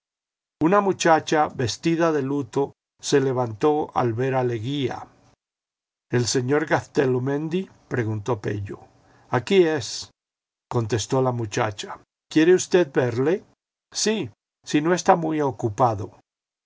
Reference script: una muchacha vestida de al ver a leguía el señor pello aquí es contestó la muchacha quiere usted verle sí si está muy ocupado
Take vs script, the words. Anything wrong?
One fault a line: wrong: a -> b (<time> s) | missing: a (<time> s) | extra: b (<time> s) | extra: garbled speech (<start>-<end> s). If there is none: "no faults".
extra: luto se levantó (2.2 s)
extra: gaztelumendi preguntó (6.7 s)
extra: no (14.8 s)